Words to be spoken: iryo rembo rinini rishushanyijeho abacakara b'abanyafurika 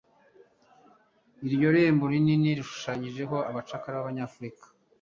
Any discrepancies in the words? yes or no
no